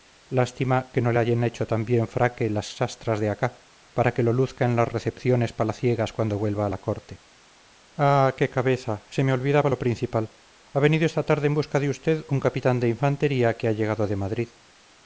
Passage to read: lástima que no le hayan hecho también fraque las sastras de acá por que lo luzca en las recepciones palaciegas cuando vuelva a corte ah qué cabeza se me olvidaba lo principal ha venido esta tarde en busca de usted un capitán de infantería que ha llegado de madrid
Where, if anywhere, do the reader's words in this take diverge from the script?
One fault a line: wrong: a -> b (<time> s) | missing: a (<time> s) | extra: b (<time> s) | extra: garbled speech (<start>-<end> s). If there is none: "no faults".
wrong: por -> para (3.9 s)
extra: la (6.7 s)